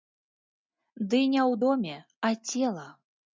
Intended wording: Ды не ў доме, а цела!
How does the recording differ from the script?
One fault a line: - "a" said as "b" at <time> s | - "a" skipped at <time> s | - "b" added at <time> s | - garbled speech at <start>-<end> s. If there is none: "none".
none